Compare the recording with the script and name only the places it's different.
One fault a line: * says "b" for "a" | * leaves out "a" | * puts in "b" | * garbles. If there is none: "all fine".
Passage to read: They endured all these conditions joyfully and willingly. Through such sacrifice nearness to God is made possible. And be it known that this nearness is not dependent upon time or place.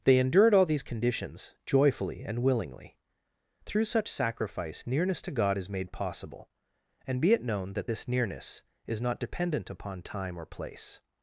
all fine